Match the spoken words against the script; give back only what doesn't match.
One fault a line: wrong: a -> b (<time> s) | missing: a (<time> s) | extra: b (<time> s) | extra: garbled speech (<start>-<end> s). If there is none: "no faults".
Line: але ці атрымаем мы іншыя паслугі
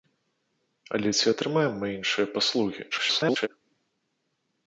extra: garbled speech (2.9-3.5 s)